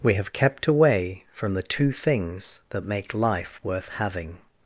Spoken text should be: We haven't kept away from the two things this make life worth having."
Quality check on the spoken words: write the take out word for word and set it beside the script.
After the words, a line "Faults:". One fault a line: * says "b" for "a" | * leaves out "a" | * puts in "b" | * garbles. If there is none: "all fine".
We have kept away from the two things that make life worth having."
Faults:
* says "have" for "haven't"
* says "that" for "this"